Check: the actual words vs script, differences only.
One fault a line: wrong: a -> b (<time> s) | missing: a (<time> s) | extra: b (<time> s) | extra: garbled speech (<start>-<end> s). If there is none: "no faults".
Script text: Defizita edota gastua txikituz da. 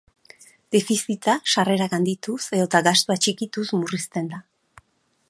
extra: sarrerak handituz (1.6 s)
extra: murrizten (3.8 s)